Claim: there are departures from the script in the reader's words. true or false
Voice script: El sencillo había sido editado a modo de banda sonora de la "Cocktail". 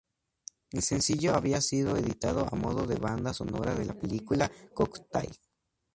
true